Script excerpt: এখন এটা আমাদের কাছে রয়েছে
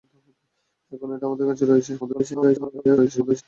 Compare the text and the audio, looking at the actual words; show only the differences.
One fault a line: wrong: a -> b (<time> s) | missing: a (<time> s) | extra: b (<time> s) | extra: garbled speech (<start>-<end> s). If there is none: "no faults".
extra: garbled speech (2.0-3.4 s)